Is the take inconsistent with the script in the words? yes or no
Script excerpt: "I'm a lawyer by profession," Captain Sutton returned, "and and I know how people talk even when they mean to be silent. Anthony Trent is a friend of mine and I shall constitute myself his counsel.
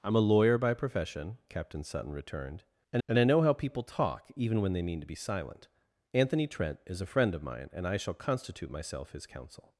no